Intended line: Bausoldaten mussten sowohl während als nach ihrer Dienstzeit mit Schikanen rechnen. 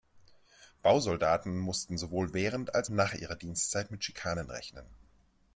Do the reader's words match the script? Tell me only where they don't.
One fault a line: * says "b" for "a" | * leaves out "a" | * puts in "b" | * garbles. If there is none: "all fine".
all fine